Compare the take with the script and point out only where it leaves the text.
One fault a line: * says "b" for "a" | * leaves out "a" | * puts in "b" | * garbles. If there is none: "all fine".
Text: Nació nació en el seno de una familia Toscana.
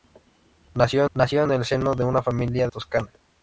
all fine